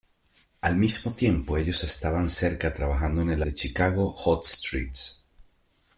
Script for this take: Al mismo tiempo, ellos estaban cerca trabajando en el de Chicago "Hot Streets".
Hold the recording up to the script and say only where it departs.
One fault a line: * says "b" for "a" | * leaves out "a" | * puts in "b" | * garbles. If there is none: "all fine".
all fine